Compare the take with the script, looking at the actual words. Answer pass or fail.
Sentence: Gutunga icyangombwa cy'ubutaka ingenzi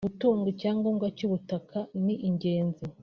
fail